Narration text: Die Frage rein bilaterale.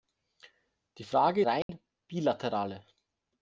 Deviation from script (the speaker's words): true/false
false